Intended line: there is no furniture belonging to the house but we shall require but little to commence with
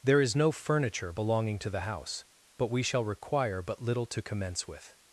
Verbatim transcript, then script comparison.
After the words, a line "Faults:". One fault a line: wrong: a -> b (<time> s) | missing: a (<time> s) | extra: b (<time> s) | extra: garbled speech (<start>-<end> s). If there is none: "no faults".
there is no furniture belonging to the house but we shall require but little to commence with
Faults:
no faults